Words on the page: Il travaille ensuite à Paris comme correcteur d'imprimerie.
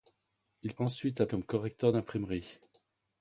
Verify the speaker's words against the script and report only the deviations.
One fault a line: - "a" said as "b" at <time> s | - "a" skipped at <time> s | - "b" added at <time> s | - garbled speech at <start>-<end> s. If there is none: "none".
- "travaille" skipped at 0.8 s
- "Paris" skipped at 1.3 s